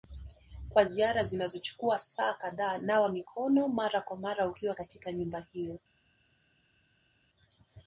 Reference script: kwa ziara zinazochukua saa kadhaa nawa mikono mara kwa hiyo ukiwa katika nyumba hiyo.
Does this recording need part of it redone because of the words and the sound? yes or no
yes